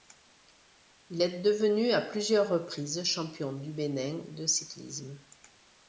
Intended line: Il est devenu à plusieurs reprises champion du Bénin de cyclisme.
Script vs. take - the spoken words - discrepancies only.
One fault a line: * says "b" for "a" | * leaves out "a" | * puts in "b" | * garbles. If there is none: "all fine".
all fine